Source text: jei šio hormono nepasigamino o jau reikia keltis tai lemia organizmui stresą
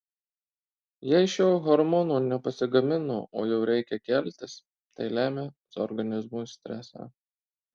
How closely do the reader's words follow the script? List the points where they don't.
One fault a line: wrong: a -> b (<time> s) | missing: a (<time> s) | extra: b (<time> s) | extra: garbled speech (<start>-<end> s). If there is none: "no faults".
no faults